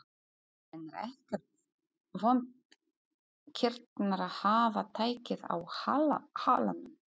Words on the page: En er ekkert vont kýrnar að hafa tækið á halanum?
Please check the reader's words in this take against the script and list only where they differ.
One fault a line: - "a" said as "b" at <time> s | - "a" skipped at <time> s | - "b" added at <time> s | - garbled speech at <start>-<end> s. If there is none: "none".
none